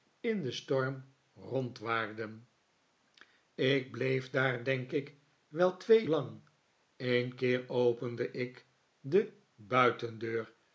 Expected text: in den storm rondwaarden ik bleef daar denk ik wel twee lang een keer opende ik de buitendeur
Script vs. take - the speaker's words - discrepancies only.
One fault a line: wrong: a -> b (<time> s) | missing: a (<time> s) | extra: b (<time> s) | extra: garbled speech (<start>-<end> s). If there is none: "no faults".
no faults